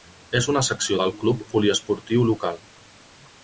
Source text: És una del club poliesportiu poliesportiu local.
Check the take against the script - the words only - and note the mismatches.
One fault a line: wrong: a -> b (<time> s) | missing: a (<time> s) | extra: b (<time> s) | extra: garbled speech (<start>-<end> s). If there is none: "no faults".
extra: secció (0.7 s)
missing: poliesportiu (2.3 s)